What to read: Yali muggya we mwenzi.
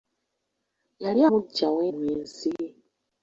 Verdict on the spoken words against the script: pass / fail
pass